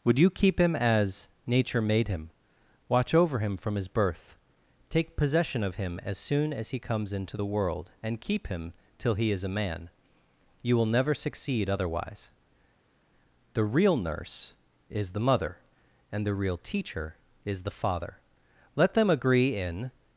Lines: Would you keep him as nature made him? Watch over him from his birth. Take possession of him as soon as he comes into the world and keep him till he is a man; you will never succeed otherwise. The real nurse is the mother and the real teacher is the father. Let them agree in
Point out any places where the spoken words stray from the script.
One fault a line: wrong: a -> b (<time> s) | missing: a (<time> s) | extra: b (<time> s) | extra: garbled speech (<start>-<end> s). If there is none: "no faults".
no faults